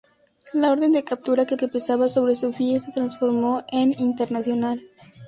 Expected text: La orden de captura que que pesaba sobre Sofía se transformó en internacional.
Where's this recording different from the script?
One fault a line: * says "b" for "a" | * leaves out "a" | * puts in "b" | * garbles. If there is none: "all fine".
all fine